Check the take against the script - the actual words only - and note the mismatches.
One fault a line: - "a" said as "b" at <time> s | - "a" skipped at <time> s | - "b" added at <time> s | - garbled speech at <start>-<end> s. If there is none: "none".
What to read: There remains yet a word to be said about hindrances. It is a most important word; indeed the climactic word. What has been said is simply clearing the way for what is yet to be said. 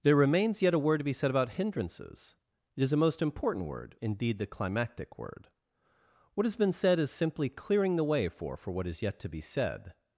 - "for" added at 8.5 s